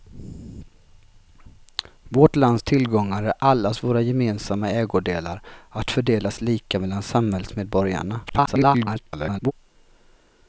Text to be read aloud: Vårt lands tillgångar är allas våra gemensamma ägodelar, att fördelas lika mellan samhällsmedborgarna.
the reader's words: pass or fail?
fail